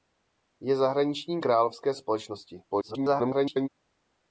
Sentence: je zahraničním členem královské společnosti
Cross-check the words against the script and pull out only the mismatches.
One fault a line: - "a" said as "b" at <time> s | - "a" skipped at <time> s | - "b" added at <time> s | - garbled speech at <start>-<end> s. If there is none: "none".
- "členem" skipped at 1.4 s
- garbled speech at 2.7-3.7 s